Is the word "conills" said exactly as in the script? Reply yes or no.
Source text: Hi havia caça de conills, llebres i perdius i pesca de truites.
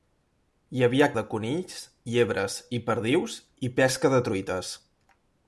yes